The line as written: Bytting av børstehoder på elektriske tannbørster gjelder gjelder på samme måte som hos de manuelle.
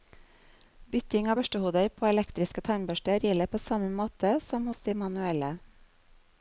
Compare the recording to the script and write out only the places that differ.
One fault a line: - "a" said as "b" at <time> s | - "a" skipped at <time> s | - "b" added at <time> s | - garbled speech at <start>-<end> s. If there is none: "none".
- "gjelder" skipped at 3.5 s